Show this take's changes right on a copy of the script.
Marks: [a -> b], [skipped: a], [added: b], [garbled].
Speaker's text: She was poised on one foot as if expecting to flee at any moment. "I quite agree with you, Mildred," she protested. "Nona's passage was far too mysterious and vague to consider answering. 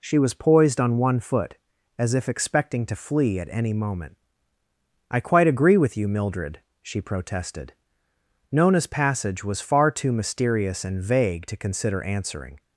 She was poised on one foot as if expecting to flee at any moment. "I quite agree with you, Mildred," she protested. "Nona's passage was far too mysterious and vague to consider answering.